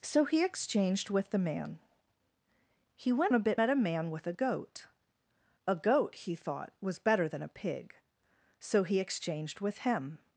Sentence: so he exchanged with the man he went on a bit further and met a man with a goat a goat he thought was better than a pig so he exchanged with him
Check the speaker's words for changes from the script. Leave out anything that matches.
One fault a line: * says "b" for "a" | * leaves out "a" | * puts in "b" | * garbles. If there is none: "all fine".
* leaves out "on"
* leaves out "further and"